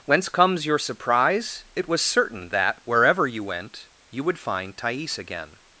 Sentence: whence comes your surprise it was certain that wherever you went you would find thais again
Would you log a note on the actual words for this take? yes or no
no